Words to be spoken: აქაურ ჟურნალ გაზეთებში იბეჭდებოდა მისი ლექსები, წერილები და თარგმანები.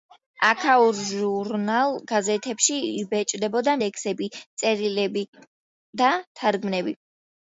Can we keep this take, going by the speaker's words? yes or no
no